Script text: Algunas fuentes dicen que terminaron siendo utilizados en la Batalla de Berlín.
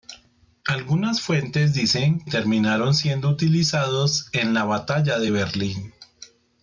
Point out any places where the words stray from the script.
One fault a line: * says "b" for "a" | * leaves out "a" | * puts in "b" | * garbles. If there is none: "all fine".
* leaves out "que"